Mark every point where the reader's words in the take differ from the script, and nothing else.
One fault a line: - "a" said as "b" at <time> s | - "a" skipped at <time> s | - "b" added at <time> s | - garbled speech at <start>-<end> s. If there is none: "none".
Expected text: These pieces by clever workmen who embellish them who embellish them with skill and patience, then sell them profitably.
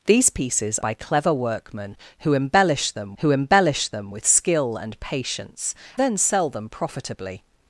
none